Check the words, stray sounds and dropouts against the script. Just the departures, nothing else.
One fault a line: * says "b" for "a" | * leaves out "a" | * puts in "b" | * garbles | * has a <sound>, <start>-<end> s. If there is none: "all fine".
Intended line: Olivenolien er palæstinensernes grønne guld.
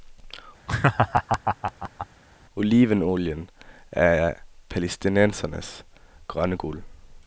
* has a laugh, 0.7-2.1 s